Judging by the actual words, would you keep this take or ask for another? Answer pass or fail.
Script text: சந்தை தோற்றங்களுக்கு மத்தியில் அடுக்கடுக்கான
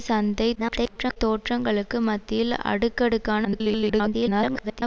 fail